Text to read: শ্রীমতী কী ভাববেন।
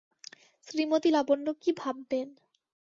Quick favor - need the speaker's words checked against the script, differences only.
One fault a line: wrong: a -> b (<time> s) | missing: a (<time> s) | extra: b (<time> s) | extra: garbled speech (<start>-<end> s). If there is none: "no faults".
extra: লাবণ্য (1.1 s)